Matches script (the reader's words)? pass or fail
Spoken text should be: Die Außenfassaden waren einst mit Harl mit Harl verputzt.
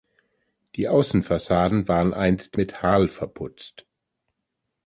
fail